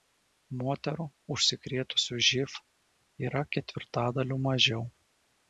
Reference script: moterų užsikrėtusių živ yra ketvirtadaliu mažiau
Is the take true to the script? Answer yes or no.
yes